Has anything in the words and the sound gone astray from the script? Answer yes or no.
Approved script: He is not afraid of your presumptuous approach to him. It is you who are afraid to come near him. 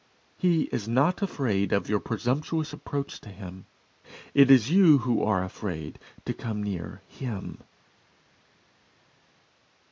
no